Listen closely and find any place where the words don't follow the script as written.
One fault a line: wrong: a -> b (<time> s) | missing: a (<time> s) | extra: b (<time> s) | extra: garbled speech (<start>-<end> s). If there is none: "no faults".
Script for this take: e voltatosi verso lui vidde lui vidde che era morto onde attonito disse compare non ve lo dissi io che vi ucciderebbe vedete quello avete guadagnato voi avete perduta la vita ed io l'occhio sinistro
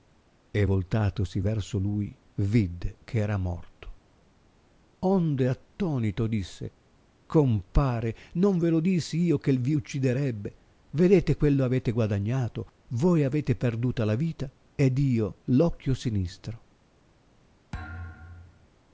missing: lui vidde (3.0 s)